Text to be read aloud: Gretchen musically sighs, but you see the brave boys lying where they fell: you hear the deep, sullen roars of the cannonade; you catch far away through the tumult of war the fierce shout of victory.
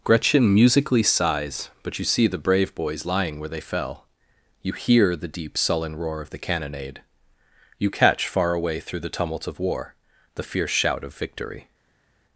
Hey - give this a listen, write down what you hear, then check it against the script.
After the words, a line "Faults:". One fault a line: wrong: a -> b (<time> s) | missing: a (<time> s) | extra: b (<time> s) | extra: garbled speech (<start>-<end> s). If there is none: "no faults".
Gretchen musically sighs, but you see the brave boys lying where they fell: you hear the deep, sullen roar of the cannonade; you catch far away through the tumult of war the fierce shout of victory.
Faults:
wrong: roars -> roar (5.9 s)